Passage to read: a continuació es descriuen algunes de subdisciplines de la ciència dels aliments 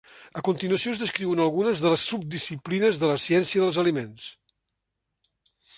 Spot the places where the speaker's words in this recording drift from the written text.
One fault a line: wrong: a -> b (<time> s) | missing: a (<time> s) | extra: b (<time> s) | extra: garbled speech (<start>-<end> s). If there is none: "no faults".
extra: les (1.9 s)